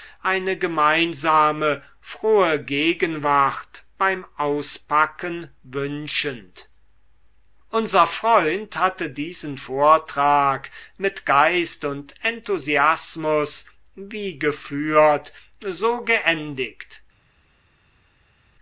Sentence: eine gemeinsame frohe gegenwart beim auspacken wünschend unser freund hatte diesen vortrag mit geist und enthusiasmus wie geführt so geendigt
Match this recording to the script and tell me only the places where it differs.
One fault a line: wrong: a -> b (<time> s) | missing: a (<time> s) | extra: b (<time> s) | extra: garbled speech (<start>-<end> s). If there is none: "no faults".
no faults